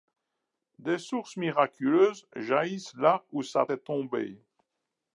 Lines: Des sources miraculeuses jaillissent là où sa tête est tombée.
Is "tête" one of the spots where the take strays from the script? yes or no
yes